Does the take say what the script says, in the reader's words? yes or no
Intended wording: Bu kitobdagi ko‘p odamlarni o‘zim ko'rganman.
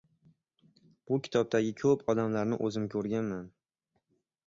yes